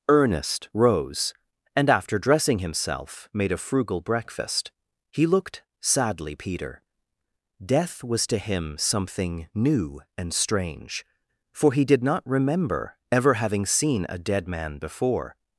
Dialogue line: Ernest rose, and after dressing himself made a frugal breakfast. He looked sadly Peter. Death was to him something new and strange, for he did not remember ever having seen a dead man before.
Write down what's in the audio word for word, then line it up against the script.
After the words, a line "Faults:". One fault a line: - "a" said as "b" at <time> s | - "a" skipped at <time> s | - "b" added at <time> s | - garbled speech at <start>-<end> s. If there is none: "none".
Ernest rose, and after dressing himself made a frugal breakfast. He looked sadly Peter. Death was to him something new and strange, for he did not remember ever having seen a dead man before.
Faults:
none